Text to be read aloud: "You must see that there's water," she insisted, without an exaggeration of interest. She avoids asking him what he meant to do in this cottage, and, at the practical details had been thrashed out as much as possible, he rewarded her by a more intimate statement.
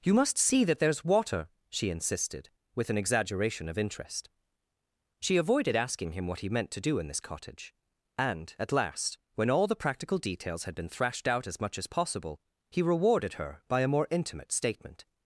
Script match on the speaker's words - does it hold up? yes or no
no